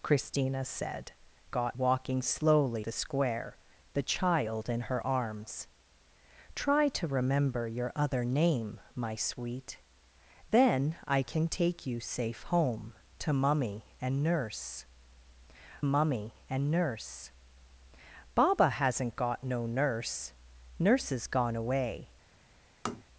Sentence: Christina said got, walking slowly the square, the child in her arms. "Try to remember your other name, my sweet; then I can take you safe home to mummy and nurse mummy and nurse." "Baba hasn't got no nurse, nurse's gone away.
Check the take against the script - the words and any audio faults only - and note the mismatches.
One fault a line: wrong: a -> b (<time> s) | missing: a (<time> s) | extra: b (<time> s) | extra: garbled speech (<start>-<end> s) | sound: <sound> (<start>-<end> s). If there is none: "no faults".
sound: tap (22.8-23.0 s)